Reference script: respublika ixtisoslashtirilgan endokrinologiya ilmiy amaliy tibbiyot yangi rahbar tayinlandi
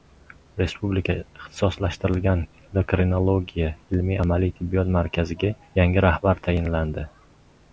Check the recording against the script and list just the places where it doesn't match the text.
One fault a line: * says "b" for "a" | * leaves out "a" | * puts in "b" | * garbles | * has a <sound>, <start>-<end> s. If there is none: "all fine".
* puts in "markaziga"